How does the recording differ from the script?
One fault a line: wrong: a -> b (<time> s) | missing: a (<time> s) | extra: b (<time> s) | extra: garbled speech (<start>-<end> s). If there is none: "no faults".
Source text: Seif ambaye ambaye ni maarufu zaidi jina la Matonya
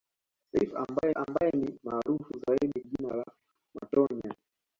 no faults